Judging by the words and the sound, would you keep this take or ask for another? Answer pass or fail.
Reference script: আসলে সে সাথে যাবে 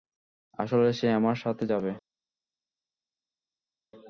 fail